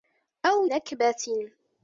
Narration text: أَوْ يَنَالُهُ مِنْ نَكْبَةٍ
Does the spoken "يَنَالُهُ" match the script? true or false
false